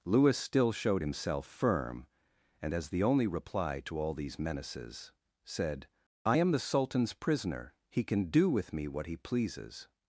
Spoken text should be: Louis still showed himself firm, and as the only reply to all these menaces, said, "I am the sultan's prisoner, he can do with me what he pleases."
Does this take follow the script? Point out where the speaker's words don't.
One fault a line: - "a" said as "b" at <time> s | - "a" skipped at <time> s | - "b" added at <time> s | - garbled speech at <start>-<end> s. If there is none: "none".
none